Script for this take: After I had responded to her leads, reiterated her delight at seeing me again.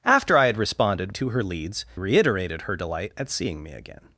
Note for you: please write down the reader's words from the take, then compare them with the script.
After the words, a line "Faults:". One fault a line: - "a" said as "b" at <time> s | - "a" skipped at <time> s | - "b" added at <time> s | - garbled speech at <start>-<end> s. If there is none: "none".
After I had responded to her leads, reiterated her delight at seeing me again.
Faults:
none